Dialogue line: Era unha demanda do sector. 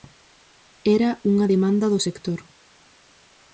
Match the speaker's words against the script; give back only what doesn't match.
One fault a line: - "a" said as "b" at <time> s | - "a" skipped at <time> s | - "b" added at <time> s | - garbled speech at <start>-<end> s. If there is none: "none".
none